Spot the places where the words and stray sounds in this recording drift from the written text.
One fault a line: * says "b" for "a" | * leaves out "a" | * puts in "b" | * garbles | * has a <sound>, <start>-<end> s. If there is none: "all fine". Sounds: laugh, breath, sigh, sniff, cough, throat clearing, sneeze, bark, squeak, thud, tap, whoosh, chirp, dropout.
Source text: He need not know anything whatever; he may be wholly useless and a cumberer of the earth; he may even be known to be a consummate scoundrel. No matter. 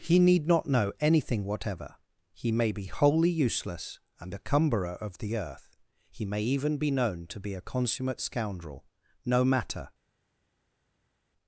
all fine